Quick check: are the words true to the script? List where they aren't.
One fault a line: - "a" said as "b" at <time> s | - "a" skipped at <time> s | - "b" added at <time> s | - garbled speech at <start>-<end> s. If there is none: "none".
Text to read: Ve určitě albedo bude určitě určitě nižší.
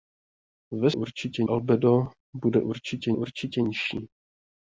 none